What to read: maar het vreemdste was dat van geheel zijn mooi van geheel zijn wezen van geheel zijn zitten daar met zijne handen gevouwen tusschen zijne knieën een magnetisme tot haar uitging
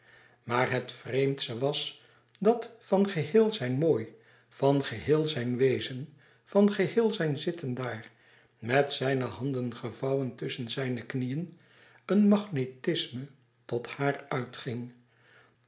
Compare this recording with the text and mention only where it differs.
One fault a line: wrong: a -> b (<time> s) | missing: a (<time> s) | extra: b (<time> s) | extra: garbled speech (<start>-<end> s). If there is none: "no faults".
no faults